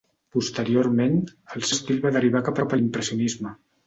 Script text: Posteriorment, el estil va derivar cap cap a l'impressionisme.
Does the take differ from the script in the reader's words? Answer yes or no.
no